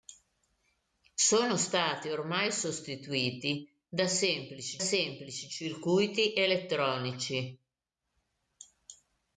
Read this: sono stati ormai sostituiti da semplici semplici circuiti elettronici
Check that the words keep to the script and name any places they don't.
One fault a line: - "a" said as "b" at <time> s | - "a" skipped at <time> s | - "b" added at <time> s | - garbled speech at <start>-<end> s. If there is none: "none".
none